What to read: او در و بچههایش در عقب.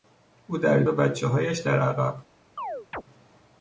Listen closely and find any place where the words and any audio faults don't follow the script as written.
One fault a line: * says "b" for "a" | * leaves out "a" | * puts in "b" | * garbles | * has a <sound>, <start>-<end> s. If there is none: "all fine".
* has a chirp, 2.6-3.0 s